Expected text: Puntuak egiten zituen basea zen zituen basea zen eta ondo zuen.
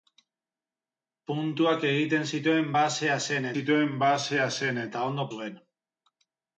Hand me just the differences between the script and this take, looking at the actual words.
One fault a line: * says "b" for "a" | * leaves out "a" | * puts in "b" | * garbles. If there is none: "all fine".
all fine